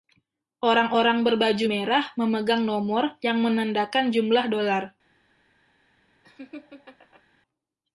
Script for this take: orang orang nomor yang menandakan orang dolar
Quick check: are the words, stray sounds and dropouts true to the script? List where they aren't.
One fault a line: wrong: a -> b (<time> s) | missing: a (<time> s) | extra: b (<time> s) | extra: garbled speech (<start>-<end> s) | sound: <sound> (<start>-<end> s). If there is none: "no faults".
extra: berbaju merah memegang (1.3 s)
wrong: orang -> jumlah (4.1 s)
sound: laugh (6.2-7.2 s)